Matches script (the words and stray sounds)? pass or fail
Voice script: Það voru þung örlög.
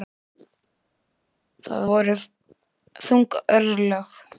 pass